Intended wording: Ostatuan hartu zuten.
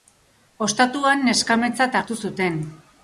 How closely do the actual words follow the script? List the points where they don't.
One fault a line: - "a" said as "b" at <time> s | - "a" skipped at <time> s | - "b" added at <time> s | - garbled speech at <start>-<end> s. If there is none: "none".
- "neskametzat" added at 1.3 s